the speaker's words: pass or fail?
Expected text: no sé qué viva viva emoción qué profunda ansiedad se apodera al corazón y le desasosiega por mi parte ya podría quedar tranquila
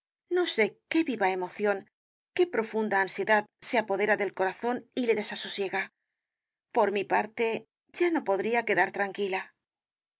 fail